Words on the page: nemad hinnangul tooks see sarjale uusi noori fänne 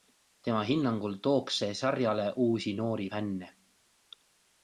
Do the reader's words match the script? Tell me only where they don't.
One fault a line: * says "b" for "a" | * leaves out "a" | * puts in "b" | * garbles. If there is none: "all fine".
* says "tema" for "nemad"